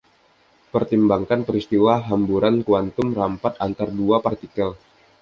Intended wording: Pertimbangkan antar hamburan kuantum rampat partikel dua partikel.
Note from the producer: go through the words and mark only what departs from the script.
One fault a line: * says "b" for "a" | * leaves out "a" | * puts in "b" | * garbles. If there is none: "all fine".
* says "peristiwa" for "antar"
* says "antar" for "partikel"